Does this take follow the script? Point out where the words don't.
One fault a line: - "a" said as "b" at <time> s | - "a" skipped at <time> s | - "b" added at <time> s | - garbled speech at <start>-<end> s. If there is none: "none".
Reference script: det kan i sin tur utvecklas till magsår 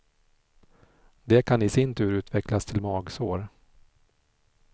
none